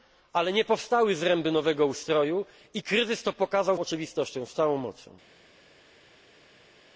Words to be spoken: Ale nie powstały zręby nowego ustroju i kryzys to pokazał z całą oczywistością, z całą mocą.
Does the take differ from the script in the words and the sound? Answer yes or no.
yes